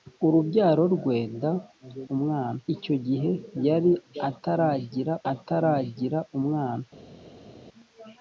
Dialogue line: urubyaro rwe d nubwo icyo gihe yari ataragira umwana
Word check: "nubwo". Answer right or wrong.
wrong